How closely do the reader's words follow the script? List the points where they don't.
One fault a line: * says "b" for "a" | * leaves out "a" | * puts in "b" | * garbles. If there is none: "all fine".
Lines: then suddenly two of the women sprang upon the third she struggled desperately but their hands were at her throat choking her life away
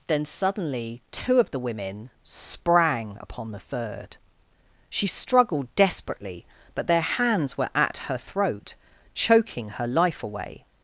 all fine